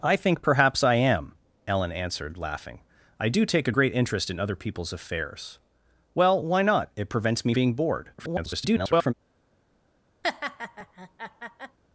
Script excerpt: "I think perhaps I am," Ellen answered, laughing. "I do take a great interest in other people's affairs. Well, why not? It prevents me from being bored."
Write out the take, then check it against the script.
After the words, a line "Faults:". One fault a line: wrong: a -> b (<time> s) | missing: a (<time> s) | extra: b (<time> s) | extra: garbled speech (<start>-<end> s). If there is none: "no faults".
"I think perhaps I am," Ellen answered, laughing. "I do take a great interest in other people's affairs. Well, why not? It prevents me being bored." [garbled]
Faults:
missing: from (7.5 s)
extra: garbled speech (8.2-9.1 s)